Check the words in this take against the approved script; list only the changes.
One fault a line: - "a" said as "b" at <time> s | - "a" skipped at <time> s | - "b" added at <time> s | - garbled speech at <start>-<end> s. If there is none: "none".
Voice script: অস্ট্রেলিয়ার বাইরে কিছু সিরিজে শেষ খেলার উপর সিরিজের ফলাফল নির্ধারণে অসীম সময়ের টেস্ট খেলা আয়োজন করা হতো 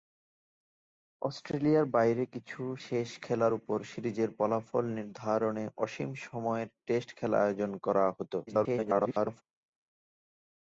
- "সিরিজে" skipped at 2.6 s
- garbled speech at 8.5-9.4 s